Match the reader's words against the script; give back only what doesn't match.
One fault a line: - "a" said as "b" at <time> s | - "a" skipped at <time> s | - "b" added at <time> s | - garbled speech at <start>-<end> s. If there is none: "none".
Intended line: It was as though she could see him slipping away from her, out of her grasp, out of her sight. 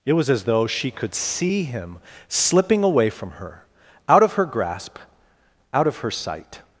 none